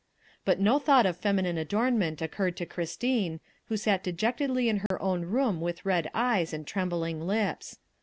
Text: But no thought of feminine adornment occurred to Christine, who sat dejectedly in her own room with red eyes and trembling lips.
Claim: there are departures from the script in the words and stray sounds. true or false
true